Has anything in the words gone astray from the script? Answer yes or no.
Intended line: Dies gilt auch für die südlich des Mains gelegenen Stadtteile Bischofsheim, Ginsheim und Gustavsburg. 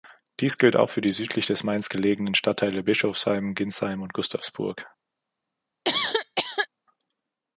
no